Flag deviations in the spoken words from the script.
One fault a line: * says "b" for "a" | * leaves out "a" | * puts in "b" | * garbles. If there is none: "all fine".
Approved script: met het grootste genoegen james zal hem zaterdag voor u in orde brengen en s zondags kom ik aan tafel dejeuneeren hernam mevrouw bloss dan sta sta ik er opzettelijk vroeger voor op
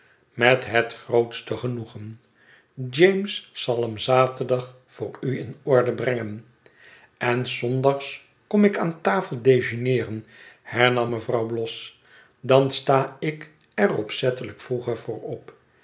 * leaves out "sta"